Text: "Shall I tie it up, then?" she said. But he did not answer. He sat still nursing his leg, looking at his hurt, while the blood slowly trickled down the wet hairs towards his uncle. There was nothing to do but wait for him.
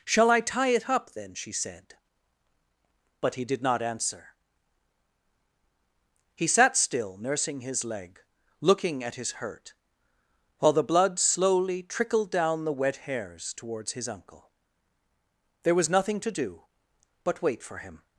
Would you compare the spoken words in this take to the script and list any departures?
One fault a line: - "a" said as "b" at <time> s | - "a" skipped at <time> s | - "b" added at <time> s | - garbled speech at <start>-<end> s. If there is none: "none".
none